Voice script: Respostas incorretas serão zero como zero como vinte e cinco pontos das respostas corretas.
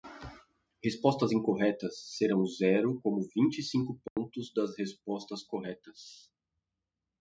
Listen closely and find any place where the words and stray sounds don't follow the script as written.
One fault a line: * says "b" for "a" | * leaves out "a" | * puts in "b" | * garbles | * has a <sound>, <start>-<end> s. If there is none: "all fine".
* leaves out "zero como"
* has a dropout, 4.1-4.2 s